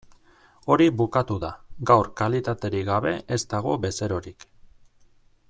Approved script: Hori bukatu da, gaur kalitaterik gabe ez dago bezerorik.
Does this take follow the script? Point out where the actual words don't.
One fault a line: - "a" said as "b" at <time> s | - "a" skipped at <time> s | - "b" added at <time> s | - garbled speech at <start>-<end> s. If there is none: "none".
none